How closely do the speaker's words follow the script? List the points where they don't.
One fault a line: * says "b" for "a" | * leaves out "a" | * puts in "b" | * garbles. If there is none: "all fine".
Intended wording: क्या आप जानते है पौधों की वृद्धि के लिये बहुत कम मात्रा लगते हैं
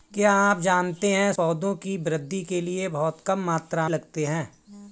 all fine